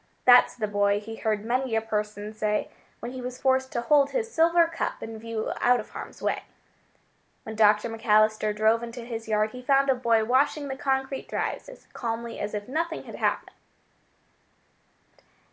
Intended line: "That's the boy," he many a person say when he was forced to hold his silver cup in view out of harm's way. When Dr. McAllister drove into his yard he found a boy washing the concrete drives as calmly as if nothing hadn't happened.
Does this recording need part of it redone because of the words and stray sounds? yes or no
yes